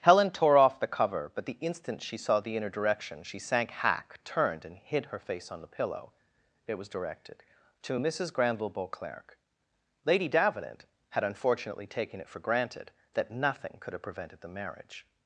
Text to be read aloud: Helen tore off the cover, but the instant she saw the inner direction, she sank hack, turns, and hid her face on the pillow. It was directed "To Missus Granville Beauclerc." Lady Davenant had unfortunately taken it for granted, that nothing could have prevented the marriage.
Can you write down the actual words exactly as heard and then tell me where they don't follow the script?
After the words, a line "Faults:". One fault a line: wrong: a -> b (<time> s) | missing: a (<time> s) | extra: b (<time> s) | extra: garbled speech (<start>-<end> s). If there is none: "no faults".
Helen tore off the cover, but the instant she saw the inner direction, she sank hack, turned, and hid her face on the pillow. It was directed "To Missus Granville Beauclerc." Lady Davenant had unfortunately taken it for granted, that nothing could have prevented the marriage.
Faults:
wrong: turns -> turned (4.2 s)